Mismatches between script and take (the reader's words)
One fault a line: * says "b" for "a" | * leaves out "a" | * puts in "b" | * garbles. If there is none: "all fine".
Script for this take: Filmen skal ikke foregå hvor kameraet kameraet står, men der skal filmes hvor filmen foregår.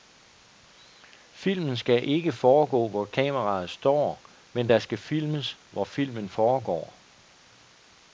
* leaves out "kameraet"